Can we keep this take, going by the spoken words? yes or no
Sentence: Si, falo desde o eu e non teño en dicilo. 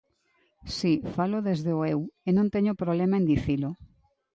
no